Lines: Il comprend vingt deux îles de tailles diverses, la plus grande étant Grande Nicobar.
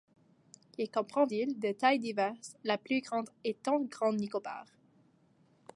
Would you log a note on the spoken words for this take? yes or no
yes